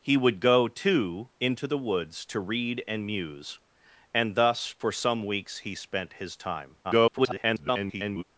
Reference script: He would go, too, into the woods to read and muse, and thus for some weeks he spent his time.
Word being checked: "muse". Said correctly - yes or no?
yes